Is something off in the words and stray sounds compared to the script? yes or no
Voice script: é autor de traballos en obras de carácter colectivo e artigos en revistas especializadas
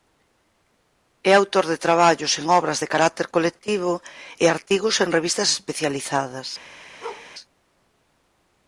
yes